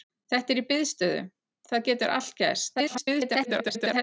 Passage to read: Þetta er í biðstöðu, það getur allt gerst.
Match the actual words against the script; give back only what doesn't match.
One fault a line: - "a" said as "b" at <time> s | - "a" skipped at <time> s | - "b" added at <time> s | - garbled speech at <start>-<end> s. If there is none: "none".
- garbled speech at 2.7-4.0 s